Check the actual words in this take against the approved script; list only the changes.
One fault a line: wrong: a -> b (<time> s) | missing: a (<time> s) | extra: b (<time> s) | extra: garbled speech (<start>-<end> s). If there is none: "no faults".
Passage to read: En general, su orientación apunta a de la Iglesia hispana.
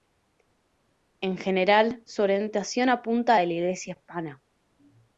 no faults